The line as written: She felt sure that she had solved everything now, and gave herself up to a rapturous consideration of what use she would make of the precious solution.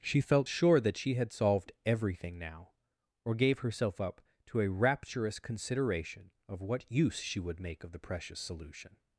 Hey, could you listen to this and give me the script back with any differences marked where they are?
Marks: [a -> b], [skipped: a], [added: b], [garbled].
She felt sure that she had solved everything now, [and -> or] gave herself up to a rapturous consideration of what use she would make of the precious solution.